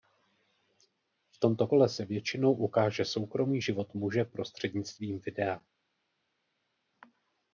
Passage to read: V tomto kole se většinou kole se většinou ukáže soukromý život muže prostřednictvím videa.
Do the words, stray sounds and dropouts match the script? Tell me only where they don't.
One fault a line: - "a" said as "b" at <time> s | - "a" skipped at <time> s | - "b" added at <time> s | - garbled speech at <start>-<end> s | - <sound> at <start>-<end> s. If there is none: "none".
- "kole se většinou" skipped at 2.5 s